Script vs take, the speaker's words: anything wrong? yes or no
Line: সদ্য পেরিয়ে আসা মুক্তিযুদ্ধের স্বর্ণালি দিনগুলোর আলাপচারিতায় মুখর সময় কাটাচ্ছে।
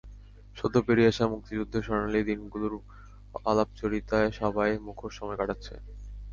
yes